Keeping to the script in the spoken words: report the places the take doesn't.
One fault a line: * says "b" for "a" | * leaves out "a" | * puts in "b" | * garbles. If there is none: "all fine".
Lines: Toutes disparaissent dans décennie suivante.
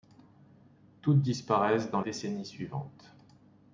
all fine